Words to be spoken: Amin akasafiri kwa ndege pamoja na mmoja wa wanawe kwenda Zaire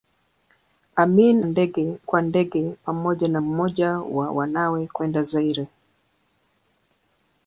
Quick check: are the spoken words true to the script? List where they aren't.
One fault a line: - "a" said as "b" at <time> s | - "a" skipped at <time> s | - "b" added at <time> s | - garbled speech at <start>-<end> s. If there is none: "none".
- "akasafiri" said as "ndege" at 1.4 s